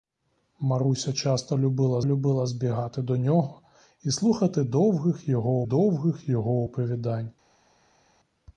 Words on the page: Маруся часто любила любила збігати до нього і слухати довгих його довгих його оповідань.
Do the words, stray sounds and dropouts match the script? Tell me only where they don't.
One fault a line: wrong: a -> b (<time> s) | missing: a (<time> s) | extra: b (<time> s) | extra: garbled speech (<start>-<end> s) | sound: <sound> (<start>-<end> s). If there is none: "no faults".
no faults